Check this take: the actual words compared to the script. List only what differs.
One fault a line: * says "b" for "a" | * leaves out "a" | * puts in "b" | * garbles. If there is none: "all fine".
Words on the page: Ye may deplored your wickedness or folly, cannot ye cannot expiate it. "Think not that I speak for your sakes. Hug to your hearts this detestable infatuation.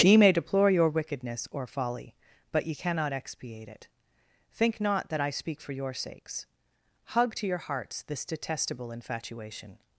* says "deplore" for "deplored"
* says "but" for "cannot"